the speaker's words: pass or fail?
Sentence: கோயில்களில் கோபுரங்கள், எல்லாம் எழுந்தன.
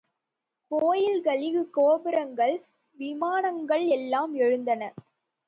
fail